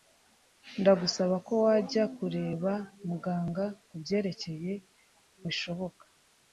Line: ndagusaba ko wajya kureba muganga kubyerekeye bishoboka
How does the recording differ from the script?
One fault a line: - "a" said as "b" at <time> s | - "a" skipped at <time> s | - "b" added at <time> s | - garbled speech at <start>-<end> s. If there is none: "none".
none